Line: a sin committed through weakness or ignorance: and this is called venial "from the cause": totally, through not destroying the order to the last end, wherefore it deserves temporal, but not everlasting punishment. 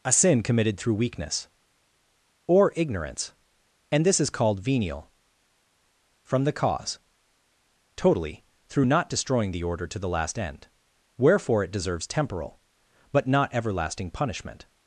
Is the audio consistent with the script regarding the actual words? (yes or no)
yes